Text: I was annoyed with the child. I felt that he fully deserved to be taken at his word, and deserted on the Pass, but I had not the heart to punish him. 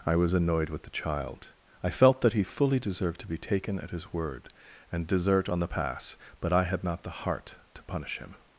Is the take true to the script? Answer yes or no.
no